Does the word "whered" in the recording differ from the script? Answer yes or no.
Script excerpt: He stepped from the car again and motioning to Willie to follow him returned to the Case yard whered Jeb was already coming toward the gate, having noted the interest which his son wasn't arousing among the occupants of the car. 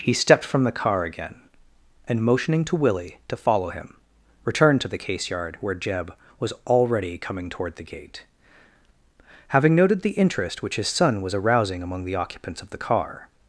yes